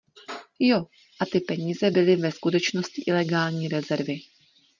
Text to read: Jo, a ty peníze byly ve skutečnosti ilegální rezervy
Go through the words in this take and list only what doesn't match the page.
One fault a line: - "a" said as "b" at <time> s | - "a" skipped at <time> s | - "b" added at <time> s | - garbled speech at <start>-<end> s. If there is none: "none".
none